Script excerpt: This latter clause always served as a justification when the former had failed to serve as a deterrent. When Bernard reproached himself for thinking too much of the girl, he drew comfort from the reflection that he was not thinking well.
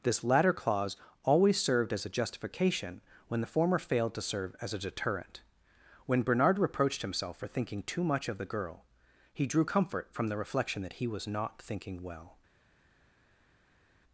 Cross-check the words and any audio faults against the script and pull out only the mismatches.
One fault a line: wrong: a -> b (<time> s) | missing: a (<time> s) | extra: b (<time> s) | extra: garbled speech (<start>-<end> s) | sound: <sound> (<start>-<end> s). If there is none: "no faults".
missing: had (3.8 s)